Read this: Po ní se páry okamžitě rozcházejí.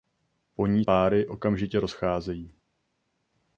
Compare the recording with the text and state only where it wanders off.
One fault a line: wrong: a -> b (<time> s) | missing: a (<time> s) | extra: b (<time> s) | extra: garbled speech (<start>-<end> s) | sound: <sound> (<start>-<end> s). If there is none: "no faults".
missing: se (0.8 s)